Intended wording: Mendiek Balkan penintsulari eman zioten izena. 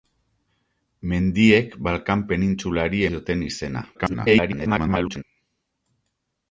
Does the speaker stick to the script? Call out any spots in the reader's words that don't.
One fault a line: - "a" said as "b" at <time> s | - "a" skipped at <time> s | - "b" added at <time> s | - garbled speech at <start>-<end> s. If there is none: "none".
- "eman" skipped at 3.0 s
- garbled speech at 3.9-5.2 s